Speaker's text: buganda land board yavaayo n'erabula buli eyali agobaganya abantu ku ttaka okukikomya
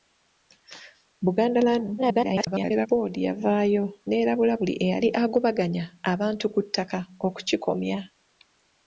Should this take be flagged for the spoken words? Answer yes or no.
yes